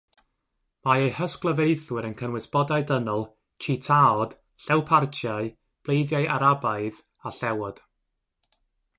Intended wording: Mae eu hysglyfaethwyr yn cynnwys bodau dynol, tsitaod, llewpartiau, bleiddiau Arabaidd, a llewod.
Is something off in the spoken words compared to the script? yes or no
no